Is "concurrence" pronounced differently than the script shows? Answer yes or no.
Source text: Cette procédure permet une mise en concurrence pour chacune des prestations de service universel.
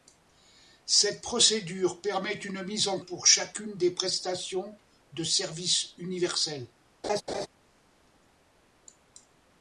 yes